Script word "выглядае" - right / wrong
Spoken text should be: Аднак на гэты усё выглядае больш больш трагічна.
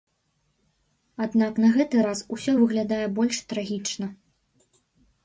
right